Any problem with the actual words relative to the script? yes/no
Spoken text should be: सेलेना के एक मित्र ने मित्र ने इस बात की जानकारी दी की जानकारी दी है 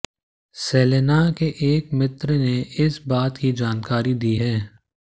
yes